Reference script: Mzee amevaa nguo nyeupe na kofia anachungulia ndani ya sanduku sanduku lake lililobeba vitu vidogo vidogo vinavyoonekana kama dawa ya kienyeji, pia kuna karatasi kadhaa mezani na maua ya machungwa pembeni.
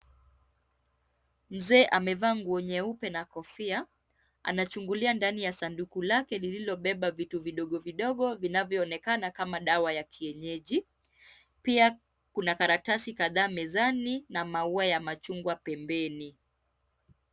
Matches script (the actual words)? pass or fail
fail